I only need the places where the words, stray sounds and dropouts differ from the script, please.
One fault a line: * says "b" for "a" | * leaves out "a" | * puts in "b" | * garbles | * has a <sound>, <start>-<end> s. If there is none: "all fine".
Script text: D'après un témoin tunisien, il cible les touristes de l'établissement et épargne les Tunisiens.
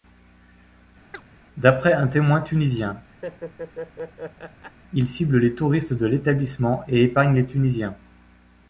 * has a chirp, 1.1-1.2 s
* has a laugh, 3.2-4.8 s